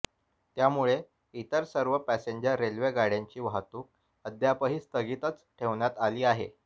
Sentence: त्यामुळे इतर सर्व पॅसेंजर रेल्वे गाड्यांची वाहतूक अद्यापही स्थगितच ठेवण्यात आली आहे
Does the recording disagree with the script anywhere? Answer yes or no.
no